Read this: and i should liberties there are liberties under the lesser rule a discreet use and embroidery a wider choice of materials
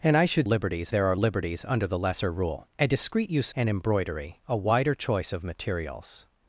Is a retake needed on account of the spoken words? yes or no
no